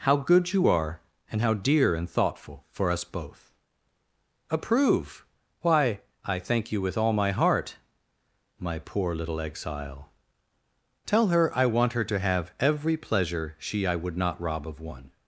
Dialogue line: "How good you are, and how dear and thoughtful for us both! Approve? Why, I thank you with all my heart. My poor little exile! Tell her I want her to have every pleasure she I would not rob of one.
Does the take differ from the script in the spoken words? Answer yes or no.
no